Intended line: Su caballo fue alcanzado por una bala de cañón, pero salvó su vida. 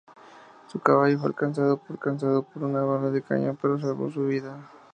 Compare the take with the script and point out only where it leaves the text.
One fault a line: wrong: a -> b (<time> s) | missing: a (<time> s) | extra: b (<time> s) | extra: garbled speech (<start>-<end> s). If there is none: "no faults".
extra: alcanzado por (1.9 s)